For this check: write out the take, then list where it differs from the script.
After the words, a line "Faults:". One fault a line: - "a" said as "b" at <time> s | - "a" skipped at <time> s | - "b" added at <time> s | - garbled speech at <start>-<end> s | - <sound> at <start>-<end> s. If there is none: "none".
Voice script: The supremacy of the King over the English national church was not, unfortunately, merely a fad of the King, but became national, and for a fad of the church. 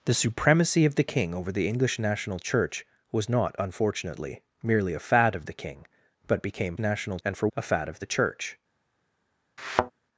The supremacy of the King over the English national church was not, unfortunately, merely a fad of the King, but became national, and for a fad of the church.
Faults:
- thud at 9.6-9.9 s